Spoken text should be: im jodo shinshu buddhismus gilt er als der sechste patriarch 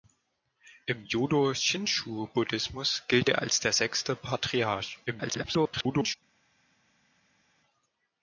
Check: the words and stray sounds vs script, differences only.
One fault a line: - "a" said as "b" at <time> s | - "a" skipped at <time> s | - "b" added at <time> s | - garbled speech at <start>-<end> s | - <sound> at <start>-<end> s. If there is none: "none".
- garbled speech at 5.1-6.2 s